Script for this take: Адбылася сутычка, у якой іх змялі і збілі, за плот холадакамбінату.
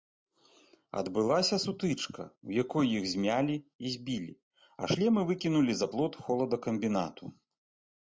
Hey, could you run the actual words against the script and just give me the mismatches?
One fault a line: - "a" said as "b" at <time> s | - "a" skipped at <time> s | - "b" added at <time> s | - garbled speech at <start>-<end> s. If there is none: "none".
- "а шлемы выкінулі" added at 4.8 s